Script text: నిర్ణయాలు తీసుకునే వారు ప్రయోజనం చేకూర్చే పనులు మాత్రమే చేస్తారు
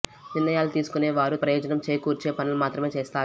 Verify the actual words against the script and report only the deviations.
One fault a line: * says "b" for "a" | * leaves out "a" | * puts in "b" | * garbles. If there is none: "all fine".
all fine